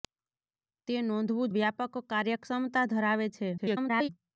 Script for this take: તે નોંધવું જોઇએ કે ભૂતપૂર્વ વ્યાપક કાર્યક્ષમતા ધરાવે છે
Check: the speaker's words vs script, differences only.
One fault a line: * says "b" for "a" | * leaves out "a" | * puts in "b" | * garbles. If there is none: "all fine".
* leaves out "જોઇએ કે ભૂતપૂર્વ"
* garbles